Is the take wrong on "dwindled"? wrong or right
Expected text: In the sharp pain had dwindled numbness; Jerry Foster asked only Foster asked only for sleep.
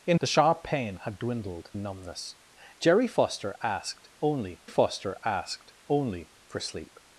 right